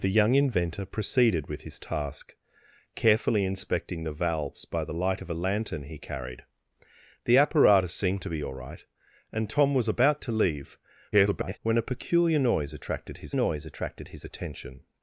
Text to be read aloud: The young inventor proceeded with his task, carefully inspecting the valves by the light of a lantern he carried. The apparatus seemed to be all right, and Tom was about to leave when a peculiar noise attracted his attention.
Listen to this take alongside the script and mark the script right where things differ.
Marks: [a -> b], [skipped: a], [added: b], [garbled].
The young inventor proceeded with his task, carefully inspecting the valves by the light of a lantern he carried. The apparatus seemed to be all right, and Tom was about to leave [garbled] when a peculiar noise attracted his [added: noise attracted his] attention.